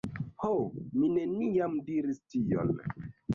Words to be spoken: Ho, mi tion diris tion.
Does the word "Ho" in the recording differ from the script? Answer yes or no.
no